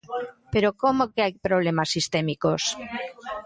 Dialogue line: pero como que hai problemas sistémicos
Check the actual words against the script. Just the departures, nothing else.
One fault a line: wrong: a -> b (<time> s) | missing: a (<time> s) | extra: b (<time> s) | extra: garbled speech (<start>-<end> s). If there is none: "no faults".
no faults